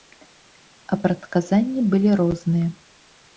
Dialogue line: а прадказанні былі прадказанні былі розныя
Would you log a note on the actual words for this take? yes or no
yes